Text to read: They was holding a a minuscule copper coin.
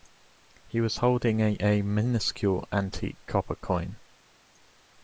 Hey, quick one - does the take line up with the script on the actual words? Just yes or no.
no